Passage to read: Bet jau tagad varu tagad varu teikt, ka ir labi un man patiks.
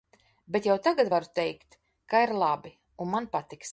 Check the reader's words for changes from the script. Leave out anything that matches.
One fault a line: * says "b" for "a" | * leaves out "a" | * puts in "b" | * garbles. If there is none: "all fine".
* leaves out "tagad varu"